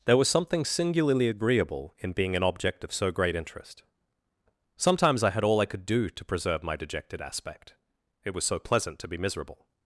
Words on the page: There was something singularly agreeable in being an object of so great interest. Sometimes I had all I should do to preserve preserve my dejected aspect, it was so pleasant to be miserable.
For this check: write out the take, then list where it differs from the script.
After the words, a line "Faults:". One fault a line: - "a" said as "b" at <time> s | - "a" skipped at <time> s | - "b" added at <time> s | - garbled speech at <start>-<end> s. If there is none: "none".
There was something singularly agreeable in being an object of so great interest. Sometimes I had all I could do to preserve my dejected aspect, it was so pleasant to be miserable.
Faults:
- "should" said as "could" at 5.7 s
- "preserve" skipped at 6.6 s